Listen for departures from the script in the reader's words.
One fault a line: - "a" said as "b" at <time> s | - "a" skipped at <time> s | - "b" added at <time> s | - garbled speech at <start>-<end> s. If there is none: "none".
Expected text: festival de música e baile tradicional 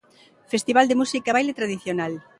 none